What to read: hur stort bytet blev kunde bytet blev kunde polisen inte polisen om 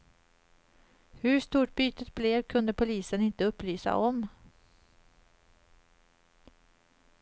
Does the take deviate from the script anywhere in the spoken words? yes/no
yes